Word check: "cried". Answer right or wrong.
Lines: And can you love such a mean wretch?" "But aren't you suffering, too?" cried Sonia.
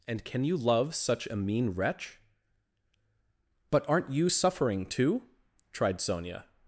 wrong